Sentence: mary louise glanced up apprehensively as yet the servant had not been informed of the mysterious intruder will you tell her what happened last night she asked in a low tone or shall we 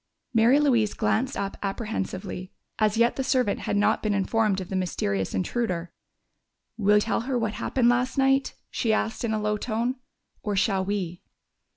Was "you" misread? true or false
true